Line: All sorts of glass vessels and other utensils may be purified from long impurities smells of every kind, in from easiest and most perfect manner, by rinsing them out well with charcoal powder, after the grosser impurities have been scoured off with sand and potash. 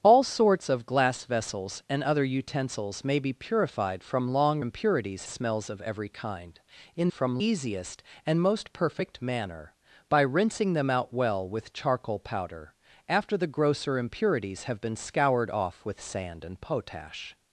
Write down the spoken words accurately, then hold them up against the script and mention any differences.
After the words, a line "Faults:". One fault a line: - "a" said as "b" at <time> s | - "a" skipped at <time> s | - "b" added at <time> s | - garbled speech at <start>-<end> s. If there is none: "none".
All sorts of glass vessels and other utensils may be purified from long impurities smells of every kind, in from easiest and most perfect manner, by rinsing them out well with charcoal powder, after the grosser impurities have been scoured off with sand and potash.
Faults:
none